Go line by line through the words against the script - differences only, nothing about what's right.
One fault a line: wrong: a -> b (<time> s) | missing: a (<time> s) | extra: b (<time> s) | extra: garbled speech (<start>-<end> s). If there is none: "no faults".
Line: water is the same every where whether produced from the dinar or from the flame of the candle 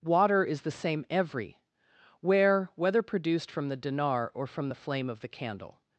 no faults